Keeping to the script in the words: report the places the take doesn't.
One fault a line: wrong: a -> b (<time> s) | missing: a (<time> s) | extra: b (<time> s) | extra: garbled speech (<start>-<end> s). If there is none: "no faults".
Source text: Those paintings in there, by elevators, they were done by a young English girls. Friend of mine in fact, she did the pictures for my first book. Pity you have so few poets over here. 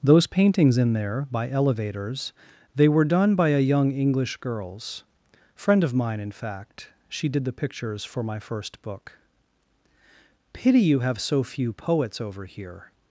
no faults